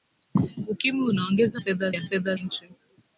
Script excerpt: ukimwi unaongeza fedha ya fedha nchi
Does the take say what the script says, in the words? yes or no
yes